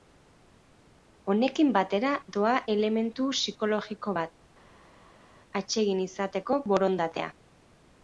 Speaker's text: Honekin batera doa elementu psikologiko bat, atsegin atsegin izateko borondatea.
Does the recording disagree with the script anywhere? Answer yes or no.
yes